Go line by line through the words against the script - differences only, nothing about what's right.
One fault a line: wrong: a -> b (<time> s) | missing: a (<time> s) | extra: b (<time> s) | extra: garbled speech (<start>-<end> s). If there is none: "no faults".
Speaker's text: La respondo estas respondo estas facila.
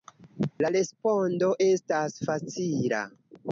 missing: respondo estas (2.2 s)